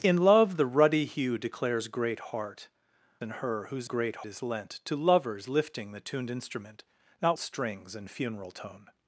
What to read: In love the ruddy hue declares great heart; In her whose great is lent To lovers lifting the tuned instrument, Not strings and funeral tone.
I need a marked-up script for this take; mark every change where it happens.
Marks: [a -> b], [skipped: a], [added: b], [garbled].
In love the ruddy hue declares great heart; In her whose great is lent To lovers lifting the tuned instrument, Not strings and funeral tone.